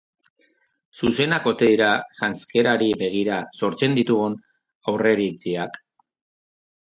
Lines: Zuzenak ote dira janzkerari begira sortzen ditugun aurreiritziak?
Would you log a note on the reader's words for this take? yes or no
no